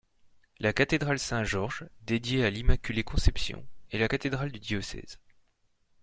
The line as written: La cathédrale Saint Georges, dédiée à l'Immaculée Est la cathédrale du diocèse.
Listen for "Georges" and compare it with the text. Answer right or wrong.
right